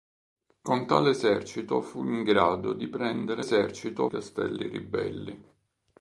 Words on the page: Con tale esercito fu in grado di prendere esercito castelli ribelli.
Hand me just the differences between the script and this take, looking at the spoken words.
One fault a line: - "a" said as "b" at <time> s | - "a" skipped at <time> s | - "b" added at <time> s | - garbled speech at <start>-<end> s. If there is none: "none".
none